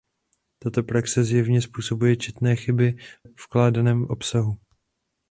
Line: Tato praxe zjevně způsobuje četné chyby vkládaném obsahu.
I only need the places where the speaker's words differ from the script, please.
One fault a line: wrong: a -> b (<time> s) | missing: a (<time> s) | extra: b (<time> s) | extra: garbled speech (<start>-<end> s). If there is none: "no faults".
no faults